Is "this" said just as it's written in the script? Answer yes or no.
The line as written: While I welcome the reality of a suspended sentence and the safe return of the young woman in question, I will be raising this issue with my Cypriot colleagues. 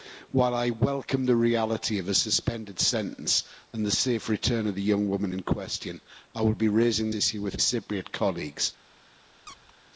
no